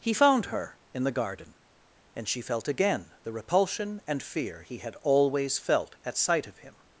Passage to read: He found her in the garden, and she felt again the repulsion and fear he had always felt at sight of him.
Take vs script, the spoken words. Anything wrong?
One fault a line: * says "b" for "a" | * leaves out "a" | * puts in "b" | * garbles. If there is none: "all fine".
all fine